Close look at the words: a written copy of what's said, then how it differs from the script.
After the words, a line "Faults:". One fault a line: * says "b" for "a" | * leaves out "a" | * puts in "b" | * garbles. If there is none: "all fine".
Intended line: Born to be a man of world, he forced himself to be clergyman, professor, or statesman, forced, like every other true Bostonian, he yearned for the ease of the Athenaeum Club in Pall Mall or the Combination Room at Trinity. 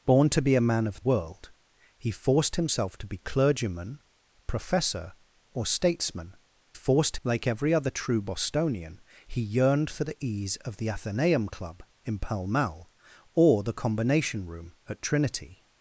Born to be a man of world, he forced himself to be clergyman, professor, or statesman, forced, like every other true Bostonian, he yearned for the ease of the Athenaeum Club in Pall Mall or the Combination Room at Trinity.
Faults:
all fine